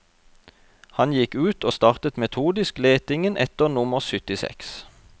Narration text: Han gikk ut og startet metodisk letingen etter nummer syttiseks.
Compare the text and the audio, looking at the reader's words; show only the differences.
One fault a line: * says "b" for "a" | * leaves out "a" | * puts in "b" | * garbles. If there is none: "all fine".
all fine